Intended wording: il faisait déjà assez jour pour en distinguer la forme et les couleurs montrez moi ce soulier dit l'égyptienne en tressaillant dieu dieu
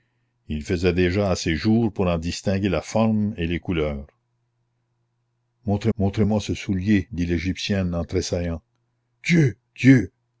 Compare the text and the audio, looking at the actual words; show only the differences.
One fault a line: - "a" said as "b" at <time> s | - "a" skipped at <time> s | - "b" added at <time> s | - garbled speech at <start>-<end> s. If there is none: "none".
- "montrez" added at 6.0 s